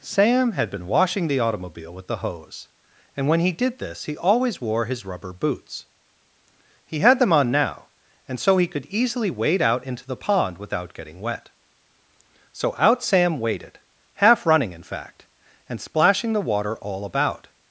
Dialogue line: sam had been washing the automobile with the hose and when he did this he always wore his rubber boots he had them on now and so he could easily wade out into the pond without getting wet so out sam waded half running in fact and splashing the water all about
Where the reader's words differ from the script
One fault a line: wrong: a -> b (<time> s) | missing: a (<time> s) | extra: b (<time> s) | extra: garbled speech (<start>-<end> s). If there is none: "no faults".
no faults